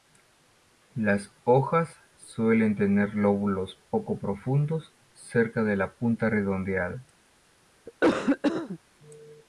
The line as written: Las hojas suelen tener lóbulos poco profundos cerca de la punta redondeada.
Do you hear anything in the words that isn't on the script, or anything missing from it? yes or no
no